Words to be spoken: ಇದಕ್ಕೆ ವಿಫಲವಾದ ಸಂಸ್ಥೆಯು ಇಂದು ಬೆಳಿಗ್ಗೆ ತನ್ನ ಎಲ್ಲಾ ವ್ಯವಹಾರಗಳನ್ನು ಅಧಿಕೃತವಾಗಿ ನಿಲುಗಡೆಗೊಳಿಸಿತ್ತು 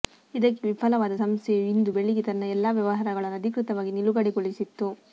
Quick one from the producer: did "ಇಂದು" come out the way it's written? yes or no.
yes